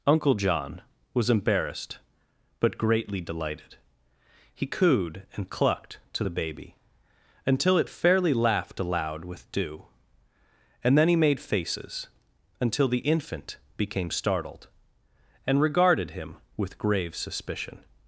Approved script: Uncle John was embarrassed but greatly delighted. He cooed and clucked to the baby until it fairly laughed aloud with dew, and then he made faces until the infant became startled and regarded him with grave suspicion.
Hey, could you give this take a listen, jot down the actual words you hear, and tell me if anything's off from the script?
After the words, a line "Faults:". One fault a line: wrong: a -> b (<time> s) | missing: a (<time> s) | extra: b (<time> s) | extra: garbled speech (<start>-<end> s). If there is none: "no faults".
Uncle John was embarrassed but greatly delighted. He cooed and clucked to the baby until it fairly laughed aloud with dew, and then he made faces until the infant became startled and regarded him with grave suspicion.
Faults:
no faults